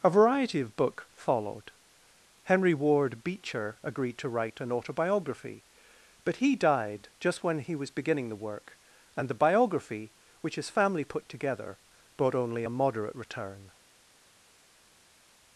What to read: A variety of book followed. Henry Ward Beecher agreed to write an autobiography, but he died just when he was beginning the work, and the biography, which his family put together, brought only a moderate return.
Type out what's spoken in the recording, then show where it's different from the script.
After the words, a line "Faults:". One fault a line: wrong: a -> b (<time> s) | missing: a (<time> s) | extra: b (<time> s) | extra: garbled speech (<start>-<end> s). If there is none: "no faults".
A variety of book followed. Henry Ward Beecher agreed to write an autobiography, but he died just when he was beginning the work, and the biography, which his family put together, brought only a moderate return.
Faults:
no faults